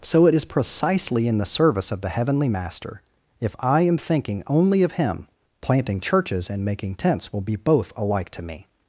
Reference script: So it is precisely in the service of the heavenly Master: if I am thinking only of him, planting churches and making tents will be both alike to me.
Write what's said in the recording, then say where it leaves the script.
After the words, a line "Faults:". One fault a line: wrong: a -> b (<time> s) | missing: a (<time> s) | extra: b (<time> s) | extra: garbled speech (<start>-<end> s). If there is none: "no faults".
So it is precisely in the service of the heavenly Master: if I am thinking only of him, planting churches and making tents will be both alike to me.
Faults:
no faults